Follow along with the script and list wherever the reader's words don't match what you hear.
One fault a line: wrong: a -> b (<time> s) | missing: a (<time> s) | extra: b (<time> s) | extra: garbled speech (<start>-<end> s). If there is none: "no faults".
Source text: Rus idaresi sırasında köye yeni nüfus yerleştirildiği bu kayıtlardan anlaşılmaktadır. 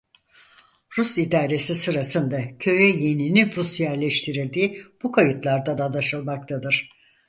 no faults